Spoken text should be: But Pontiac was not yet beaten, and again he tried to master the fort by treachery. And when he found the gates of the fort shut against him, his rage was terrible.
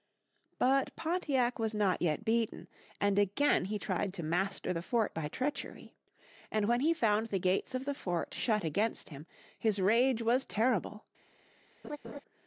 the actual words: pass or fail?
pass